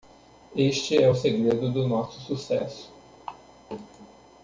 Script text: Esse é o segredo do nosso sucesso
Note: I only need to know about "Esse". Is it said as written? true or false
false